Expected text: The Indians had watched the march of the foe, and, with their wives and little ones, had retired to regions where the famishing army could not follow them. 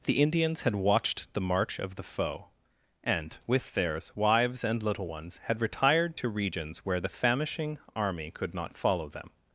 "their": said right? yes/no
no